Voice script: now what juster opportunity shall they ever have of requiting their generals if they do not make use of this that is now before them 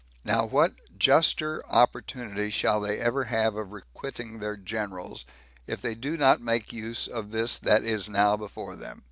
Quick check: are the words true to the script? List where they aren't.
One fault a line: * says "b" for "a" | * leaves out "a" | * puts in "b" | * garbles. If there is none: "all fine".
all fine